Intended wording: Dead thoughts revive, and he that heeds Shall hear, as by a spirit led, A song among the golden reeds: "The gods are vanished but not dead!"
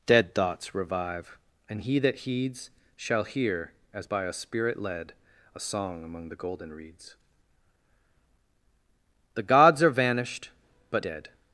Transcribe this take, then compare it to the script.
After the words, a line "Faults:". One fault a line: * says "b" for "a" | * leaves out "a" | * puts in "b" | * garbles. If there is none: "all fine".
Dead thoughts revive, and he that heeds Shall hear, as by a spirit led, A song among the golden reeds: "The gods are vanished but dead!"
Faults:
* leaves out "not"